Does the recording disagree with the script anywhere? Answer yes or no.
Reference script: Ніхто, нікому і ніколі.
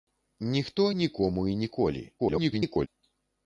yes